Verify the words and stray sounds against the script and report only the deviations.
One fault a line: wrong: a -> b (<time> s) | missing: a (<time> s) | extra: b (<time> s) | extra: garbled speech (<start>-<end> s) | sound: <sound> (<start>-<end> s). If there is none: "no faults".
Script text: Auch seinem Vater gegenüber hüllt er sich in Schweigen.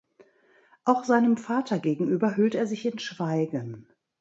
no faults